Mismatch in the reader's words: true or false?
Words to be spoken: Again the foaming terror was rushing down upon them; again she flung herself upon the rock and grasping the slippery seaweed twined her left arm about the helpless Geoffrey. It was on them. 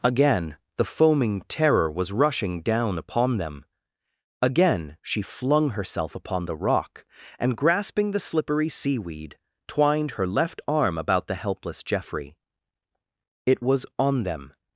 false